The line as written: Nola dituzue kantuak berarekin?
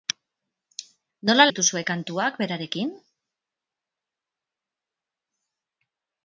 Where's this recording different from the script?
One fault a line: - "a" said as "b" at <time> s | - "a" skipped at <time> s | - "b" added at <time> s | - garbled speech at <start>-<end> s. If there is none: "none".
none